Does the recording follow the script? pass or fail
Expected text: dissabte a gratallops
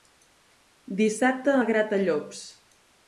pass